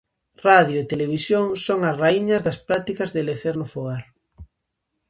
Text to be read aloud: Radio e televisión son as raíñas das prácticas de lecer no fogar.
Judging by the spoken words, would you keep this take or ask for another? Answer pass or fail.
pass